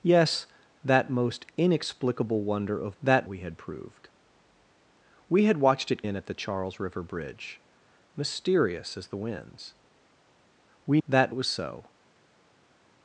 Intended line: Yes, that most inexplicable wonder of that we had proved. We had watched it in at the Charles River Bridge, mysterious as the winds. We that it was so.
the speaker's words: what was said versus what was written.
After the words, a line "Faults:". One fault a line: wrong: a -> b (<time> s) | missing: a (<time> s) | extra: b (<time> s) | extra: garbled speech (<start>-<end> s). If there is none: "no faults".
Yes, that most inexplicable wonder of that we had proved. We had watched it in at the Charles River Bridge, mysterious as the winds. We that it was so.
Faults:
no faults